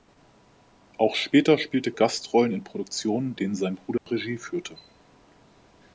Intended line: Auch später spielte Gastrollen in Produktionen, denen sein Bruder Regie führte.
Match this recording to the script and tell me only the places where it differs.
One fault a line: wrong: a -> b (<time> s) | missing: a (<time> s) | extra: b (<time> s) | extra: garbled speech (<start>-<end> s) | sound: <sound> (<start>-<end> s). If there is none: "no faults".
sound: dropout (4.0-4.1 s)